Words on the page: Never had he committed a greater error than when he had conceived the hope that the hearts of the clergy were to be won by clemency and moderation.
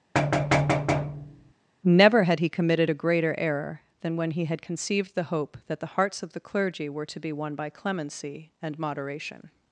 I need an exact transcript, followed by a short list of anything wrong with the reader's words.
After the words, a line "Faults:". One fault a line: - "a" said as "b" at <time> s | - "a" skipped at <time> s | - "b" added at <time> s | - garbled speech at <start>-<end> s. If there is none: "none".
Never had he committed a greater error than when he had conceived the hope that the hearts of the clergy were to be won by clemency and moderation.
Faults:
none